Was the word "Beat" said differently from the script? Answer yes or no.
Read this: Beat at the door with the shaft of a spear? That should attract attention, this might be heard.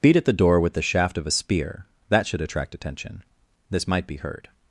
no